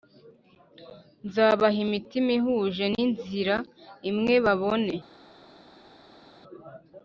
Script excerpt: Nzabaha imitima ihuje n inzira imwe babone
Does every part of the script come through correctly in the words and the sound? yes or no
yes